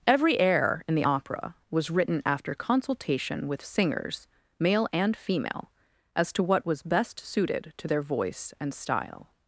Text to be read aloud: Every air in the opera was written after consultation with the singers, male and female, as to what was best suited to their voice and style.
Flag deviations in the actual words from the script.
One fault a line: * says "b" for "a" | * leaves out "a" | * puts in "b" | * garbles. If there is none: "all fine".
* leaves out "the"